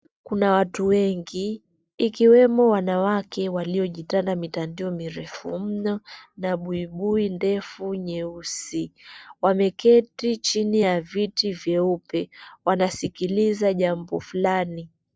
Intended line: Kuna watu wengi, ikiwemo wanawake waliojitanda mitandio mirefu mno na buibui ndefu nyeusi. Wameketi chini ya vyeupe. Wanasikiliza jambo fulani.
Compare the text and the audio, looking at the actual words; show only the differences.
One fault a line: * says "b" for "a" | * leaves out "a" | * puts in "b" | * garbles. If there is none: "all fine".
* puts in "viti"